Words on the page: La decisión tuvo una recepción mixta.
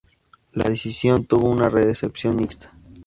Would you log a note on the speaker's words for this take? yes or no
no